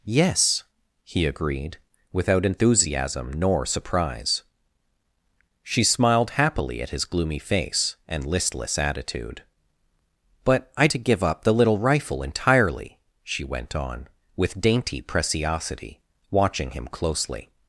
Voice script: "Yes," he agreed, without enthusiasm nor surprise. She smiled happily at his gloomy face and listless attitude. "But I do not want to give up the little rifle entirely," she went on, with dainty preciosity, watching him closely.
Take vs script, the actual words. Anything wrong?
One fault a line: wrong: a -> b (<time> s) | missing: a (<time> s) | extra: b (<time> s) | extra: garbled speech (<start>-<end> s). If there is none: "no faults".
missing: do not want (10.9 s)